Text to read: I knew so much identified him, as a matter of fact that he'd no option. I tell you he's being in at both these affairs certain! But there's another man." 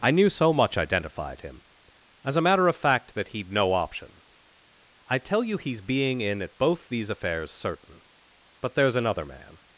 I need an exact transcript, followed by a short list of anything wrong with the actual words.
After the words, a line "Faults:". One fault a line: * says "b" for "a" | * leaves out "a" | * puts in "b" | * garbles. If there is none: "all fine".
I knew so much identified him, as a matter of fact that he'd no option. I tell you he's being in at both these affairs certain! But there's another man."
Faults:
all fine